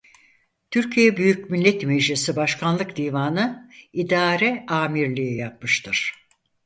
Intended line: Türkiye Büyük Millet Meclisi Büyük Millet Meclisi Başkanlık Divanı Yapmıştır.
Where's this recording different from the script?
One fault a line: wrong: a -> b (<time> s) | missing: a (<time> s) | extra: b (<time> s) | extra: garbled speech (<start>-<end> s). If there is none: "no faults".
wrong: Büyük Millet Meclisi Başkanlık Divanı -> Başkanlık Divanı İdare Amirliği (2.4 s)